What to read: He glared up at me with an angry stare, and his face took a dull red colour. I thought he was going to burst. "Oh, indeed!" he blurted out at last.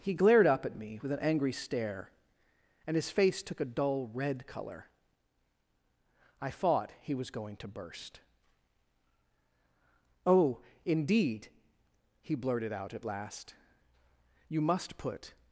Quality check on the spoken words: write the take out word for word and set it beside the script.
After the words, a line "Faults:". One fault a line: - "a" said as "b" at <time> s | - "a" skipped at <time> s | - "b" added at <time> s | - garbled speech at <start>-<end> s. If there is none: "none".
He glared up at me with an angry stare, and his face took a dull red colour. I thought he was going to burst. "Oh, indeed!" he blurted out at last. "You must put
Faults:
- "You must put" added at 14.5 s